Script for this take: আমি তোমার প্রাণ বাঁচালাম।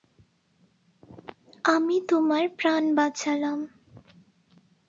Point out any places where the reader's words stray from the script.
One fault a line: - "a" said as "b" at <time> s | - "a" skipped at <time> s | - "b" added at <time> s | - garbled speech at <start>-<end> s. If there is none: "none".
none